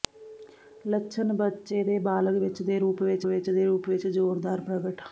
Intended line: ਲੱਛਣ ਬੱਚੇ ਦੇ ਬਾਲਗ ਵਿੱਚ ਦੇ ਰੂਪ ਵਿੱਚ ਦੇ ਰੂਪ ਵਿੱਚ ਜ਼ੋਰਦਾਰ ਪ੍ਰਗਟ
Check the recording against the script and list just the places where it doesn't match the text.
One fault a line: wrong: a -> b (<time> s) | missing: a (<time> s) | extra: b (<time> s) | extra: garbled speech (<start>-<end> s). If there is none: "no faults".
extra: ਵਿੱਚ (3.3 s)